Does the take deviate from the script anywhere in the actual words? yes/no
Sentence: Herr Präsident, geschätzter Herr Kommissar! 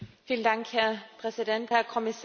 yes